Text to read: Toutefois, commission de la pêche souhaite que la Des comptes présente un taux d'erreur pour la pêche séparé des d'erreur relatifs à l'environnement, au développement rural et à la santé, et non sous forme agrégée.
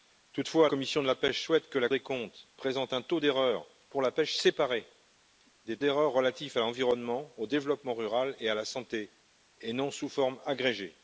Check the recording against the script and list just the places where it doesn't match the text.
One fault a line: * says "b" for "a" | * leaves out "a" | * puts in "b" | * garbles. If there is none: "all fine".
all fine